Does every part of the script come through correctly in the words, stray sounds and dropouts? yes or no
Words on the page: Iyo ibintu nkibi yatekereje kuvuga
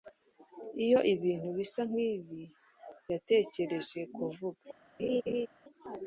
no